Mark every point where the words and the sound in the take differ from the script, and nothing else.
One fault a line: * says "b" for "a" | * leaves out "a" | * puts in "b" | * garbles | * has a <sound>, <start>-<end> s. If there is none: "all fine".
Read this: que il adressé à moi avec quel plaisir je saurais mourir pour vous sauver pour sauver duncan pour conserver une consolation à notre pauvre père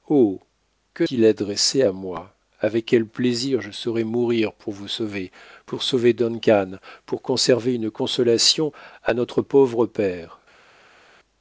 all fine